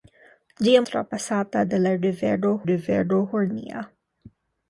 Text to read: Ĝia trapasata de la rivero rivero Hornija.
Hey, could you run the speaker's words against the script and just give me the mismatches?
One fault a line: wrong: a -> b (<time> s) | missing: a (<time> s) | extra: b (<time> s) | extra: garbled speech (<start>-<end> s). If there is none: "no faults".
no faults